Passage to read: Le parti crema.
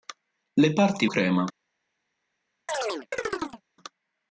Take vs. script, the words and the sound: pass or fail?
fail